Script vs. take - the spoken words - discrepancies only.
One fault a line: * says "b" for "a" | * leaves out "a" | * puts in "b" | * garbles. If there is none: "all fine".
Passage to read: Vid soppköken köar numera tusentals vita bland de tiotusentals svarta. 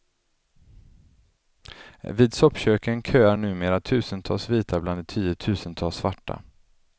all fine